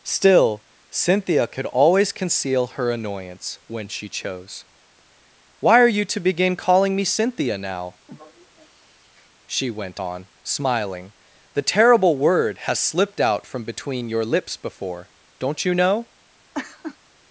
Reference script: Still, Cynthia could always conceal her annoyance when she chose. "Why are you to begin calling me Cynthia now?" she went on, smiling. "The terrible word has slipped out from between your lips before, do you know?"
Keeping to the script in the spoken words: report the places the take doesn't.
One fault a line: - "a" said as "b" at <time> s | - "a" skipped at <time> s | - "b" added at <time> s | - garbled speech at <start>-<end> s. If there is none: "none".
- "do" said as "don't" at 15.4 s